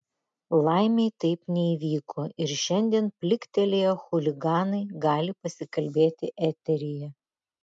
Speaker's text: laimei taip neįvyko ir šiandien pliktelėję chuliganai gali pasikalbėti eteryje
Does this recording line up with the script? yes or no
yes